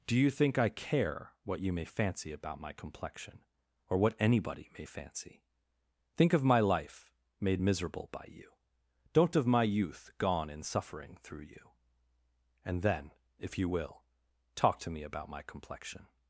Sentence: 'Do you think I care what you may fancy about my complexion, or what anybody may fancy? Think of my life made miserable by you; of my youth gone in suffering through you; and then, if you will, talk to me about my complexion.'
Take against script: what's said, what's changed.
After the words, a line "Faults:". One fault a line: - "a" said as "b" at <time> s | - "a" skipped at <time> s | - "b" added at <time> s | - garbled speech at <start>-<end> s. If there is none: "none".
'Do you think I care what you may fancy about my complexion, or what anybody may fancy? Think of my life made miserable by you; don't of my youth gone in suffering through you; and then, if you will, talk to me about my complexion.'
Faults:
- "don't" added at 9.1 s